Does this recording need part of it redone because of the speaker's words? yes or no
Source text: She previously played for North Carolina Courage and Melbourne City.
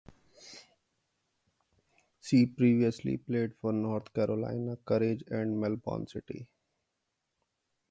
no